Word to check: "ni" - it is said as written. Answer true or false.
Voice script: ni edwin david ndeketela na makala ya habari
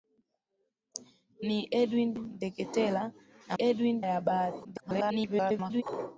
true